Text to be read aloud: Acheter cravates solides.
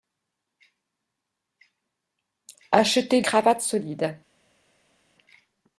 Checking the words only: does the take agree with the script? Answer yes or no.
yes